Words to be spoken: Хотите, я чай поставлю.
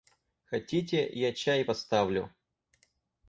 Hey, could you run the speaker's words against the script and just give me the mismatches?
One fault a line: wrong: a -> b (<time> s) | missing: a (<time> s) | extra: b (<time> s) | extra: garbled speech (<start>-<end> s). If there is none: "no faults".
no faults